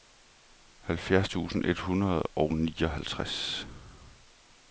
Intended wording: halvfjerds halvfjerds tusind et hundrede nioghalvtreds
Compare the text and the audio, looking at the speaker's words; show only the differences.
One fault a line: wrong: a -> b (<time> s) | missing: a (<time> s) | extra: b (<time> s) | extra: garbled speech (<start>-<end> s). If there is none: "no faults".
missing: halvfjerds (1.3 s)
extra: og (2.2 s)